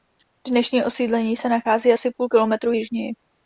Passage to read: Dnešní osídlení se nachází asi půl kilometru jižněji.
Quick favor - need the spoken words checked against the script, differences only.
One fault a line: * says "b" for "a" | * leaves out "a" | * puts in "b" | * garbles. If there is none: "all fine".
all fine